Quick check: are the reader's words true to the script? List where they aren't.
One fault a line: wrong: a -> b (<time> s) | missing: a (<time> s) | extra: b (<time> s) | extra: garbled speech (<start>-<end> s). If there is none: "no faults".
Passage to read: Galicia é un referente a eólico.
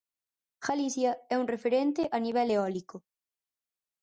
extra: nivel (2.3 s)